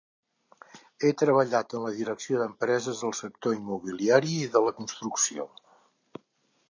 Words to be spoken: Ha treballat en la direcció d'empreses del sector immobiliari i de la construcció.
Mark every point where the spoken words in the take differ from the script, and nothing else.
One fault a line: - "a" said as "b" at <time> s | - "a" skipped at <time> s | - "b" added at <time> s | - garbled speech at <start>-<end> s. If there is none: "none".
none